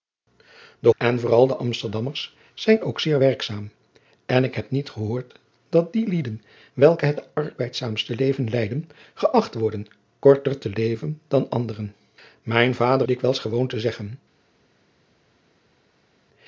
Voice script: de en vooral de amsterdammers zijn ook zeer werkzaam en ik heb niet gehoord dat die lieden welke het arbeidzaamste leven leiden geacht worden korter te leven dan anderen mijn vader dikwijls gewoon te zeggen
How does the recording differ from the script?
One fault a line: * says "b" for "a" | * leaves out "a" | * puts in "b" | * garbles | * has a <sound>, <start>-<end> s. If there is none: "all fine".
all fine